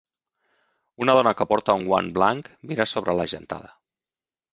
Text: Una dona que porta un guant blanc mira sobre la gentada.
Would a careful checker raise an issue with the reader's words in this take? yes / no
no